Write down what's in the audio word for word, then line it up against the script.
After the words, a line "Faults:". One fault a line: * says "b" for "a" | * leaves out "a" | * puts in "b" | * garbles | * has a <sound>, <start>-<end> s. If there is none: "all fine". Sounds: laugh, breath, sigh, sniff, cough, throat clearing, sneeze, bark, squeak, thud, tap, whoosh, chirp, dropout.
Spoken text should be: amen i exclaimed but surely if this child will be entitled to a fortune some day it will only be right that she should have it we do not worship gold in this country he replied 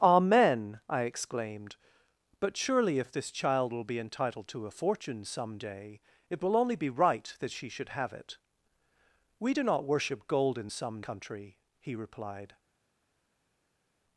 amen i exclaimed but surely if this child will be entitled to a fortune some day it will only be right that she should have it we do not worship gold in some country he replied
Faults:
* says "some" for "this"